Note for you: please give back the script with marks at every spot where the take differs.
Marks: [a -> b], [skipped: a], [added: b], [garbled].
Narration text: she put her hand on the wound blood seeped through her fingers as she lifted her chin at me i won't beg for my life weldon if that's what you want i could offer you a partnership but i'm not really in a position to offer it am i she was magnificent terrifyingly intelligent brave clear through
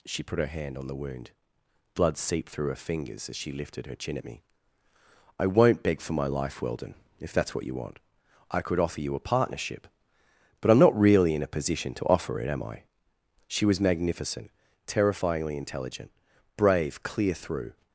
she put her hand on the wound blood seeped through her fingers as she lifted her chin at me i won't beg for my life weldon if that's what you want i could offer you a partnership but i'm not really in a position to offer it am i she was magnificent terrifyingly intelligent brave clear through